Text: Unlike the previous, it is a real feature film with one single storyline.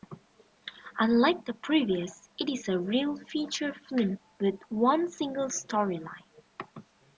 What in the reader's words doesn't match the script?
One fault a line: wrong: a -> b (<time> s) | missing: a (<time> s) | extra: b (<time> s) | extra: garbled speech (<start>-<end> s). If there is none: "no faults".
no faults